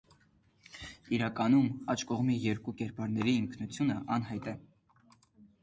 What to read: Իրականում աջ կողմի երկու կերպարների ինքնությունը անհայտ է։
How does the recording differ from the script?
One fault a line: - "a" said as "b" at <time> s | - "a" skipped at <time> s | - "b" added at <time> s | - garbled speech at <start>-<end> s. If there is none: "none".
none